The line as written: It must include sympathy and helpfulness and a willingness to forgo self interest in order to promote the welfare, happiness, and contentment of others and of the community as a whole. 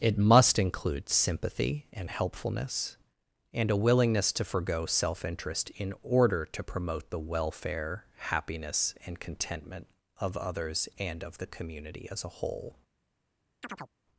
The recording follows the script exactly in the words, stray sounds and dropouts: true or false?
false